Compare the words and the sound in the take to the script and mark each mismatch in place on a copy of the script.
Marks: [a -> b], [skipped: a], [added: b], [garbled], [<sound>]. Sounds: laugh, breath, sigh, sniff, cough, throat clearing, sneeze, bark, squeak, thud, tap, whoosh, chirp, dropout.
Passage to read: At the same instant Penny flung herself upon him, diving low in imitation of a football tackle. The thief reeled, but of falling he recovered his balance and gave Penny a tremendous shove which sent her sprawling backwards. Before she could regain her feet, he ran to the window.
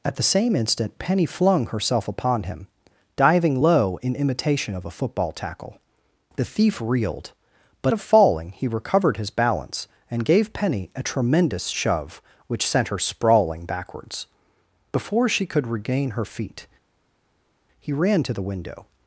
At the same instant Penny flung herself upon him, diving low in imitation of a football tackle. The thief reeled, but of falling he recovered his balance and gave Penny a tremendous shove which sent her sprawling backwards. Before she could regain her feet, he ran to the window.